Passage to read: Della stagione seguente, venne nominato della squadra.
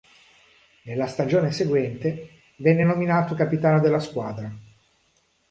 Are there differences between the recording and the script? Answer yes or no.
yes